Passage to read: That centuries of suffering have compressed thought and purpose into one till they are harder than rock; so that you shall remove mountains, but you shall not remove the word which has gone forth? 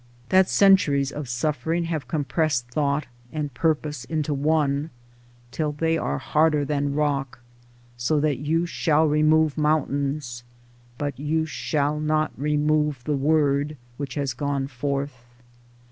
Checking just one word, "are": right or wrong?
right